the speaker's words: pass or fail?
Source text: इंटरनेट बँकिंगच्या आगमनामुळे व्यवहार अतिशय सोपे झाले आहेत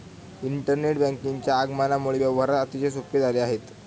pass